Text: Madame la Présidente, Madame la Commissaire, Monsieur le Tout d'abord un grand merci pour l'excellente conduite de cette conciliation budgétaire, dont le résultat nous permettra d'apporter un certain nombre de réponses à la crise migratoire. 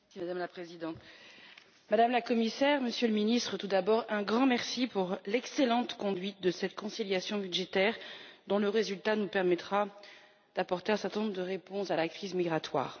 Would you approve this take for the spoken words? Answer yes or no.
no